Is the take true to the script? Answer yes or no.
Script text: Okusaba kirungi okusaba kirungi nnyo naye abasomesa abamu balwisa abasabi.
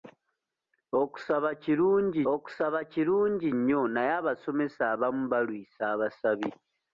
yes